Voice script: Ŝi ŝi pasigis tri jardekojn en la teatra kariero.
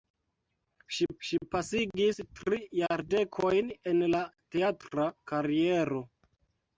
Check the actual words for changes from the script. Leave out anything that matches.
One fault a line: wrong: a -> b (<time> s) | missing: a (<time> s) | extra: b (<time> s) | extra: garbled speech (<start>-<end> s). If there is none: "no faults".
no faults